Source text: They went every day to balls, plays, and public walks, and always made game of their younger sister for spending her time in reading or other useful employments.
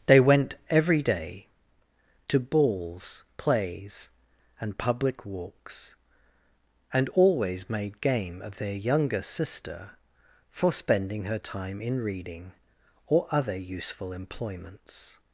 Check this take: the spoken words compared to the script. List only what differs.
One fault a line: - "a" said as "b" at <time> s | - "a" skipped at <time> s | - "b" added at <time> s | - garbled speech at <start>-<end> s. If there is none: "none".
none